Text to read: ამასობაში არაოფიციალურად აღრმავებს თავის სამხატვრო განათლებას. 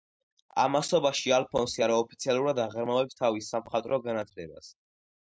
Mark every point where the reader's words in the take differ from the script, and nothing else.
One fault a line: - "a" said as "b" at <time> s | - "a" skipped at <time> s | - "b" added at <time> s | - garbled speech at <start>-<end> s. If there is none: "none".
- "ალფონსი" added at 1.4 s